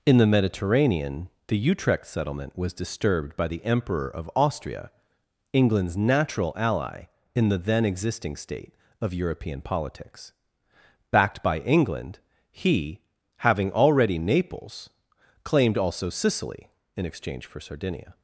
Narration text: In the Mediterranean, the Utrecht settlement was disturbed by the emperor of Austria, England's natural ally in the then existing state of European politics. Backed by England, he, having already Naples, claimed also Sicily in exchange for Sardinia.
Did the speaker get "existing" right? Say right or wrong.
right